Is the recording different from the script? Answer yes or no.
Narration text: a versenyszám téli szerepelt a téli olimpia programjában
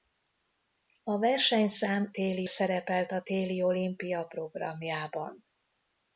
no